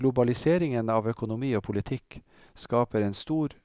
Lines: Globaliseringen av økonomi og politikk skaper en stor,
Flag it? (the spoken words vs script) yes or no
no